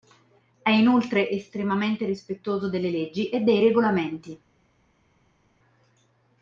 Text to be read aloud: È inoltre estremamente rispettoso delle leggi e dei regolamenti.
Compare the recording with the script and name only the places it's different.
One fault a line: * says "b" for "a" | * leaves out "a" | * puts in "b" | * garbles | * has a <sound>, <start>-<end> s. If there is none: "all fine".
all fine